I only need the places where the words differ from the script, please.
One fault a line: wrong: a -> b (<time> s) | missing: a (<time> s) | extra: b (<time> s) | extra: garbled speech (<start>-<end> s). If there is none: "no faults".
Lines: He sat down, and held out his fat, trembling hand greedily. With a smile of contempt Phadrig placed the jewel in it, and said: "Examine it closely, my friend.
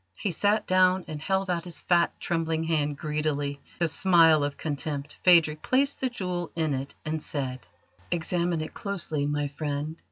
missing: With (3.6 s)